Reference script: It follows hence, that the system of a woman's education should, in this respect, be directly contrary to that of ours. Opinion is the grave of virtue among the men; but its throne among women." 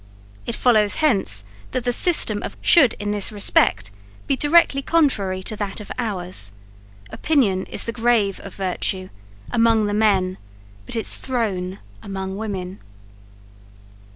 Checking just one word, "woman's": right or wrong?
wrong